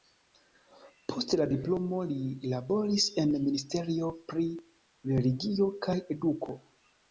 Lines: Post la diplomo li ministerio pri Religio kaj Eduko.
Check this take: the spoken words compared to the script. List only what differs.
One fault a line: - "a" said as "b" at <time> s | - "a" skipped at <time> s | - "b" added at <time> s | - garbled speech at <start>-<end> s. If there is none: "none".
- "laboris en" added at 2.5 s